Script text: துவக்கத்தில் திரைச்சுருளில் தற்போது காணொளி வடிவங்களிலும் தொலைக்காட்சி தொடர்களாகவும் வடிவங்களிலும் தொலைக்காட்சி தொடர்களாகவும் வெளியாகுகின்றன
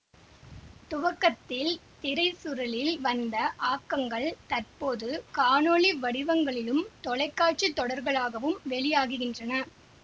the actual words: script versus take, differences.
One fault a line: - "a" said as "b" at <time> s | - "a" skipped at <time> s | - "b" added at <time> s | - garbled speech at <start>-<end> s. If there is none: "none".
- "வந்த ஆக்கங்கள்" added at 3.0 s
- "வடிவங்களிலும் தொலைக்காட்சி தொடர்களாகவும்" skipped at 8.6 s